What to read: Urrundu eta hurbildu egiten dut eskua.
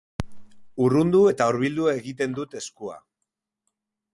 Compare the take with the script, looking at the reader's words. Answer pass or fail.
pass